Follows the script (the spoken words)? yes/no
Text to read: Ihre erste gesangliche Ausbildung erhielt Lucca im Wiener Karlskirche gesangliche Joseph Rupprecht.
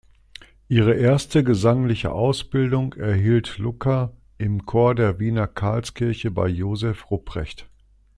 no